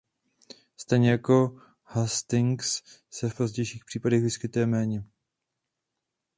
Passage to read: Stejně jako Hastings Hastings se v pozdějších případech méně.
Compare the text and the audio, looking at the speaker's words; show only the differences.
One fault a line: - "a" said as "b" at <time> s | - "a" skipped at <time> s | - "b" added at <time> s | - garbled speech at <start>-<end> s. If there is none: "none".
- "Hastings" skipped at 2.8 s
- "vyskytuje" added at 4.2 s